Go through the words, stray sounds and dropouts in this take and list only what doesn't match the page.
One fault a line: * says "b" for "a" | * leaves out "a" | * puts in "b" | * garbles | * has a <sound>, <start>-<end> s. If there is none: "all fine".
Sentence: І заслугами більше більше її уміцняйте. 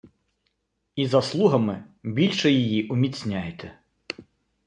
* leaves out "більше"